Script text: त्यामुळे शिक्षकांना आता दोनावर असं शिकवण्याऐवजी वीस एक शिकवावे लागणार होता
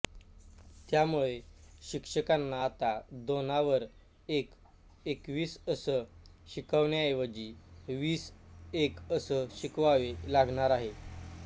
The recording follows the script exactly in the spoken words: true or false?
false